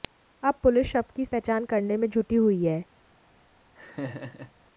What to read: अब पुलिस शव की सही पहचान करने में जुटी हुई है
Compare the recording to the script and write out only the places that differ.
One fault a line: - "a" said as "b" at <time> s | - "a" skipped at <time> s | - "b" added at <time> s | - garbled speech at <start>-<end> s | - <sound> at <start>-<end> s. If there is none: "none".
- "सही" skipped at 1.2 s
- laugh at 3.7-4.5 s